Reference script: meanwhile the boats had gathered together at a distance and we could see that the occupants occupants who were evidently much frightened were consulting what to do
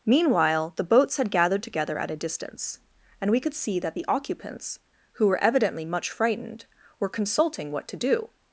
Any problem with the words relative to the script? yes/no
yes